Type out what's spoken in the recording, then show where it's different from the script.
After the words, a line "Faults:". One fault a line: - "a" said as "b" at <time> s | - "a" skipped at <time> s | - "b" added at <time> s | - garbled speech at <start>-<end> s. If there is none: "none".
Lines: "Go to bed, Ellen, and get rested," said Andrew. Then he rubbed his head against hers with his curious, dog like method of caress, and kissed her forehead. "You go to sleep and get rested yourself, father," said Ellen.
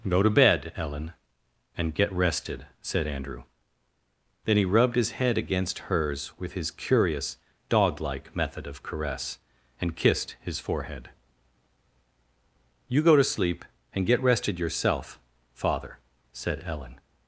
"Go to bed, Ellen, and get rested," said Andrew. Then he rubbed his head against hers with his curious, dog like method of caress, and kissed his forehead. "You go to sleep and get rested yourself, father," said Ellen.
Faults:
- "her" said as "his" at 10.4 s